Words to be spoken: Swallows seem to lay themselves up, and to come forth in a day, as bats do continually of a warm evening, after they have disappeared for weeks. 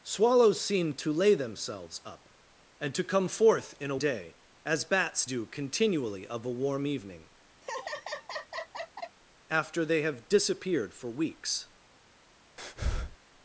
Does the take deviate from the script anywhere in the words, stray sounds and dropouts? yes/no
yes